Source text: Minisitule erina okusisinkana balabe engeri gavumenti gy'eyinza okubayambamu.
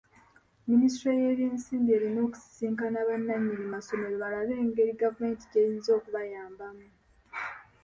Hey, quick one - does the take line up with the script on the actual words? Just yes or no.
no